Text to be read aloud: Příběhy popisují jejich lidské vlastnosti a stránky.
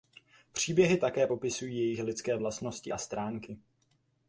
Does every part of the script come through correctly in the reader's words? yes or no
no